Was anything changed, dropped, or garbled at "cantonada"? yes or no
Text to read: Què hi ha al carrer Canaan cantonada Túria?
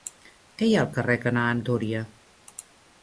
yes